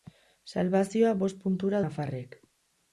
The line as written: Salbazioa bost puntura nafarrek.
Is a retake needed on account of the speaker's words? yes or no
no